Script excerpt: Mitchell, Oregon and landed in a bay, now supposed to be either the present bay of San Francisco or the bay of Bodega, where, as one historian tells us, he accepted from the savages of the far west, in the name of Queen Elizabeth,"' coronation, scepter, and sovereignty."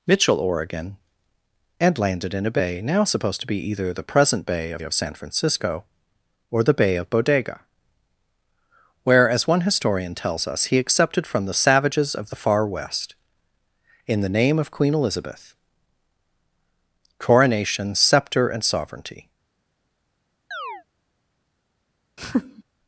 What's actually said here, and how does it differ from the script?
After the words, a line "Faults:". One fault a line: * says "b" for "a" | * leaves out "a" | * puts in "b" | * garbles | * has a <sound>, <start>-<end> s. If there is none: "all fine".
Mitchell, Oregon and landed in a bay, now supposed to be either the present bay of of San Francisco or the bay of Bodega, where, as one historian tells us, he accepted from the savages of the far west, in the name of Queen Elizabeth,"' coronation, scepter, and sovereignty."
Faults:
* puts in "of"
* has a chirp, 20.5-20.8 s
* has a laugh, 22.2-22.6 s